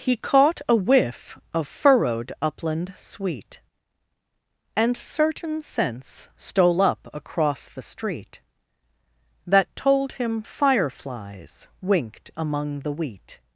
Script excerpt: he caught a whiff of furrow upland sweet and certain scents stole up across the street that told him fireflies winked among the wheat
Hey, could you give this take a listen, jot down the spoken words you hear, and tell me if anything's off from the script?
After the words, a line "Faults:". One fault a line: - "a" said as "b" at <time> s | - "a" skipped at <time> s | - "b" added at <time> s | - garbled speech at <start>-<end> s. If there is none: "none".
he caught a whiff of furrowed upland sweet and certain scents stole up across the street that told him fireflies winked among the wheat
Faults:
- "furrow" said as "furrowed" at 1.7 s